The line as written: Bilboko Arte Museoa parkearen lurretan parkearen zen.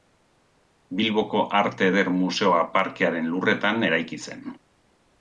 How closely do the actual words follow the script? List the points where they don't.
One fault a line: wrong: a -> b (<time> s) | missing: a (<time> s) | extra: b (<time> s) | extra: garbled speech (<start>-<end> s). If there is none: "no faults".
extra: Eder (1.9 s)
wrong: parkearen -> eraiki (3.9 s)